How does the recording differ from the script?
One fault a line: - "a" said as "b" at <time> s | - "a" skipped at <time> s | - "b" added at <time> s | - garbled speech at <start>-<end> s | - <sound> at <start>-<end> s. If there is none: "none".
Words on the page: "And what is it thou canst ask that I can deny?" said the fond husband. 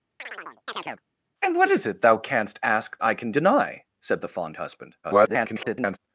- chirp at 0.2-1.0 s
- "that" skipped at 3.0 s
- garbled speech at 5.0-6.0 s